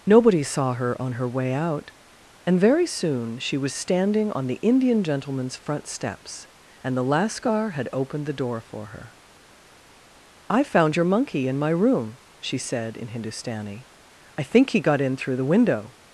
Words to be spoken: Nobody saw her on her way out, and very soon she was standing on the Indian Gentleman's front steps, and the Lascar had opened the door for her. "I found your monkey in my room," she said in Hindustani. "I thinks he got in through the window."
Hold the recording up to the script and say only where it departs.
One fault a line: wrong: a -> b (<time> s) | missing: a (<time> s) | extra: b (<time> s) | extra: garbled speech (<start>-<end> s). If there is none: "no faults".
wrong: thinks -> think (14.4 s)